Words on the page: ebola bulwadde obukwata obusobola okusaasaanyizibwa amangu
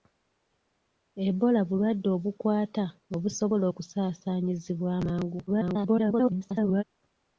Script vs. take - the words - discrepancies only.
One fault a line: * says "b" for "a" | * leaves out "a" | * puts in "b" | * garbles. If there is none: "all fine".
* garbles